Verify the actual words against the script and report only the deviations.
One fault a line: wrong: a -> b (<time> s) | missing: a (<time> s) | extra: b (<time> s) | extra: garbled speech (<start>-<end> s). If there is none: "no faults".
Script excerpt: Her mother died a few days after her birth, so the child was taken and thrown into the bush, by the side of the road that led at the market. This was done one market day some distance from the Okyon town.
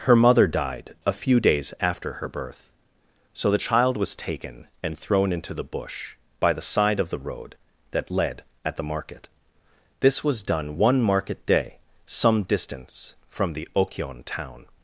no faults